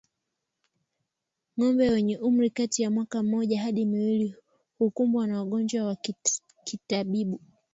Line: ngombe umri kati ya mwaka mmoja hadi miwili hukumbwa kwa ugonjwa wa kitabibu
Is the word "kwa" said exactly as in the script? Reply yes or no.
no